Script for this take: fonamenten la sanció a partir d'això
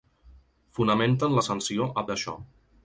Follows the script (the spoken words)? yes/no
no